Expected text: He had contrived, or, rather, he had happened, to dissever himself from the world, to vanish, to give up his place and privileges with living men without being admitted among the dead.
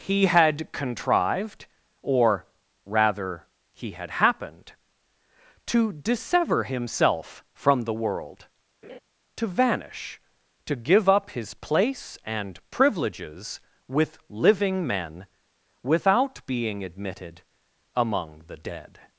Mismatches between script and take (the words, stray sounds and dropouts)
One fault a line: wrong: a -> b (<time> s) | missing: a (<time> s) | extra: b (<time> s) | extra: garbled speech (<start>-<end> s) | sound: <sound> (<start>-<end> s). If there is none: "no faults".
sound: laugh (8.8-9.0 s)